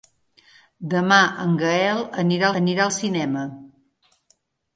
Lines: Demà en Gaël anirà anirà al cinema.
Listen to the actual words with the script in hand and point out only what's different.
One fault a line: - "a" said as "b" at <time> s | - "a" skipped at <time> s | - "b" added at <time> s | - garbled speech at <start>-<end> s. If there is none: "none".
none